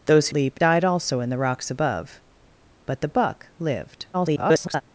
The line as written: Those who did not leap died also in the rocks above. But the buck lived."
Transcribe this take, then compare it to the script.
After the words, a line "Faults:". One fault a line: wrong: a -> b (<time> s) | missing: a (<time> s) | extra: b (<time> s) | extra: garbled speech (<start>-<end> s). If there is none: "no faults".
Those leap died also in the rocks above. But the buck lived." [garbled]
Faults:
missing: who did not (0.3 s)
extra: garbled speech (4.1-4.8 s)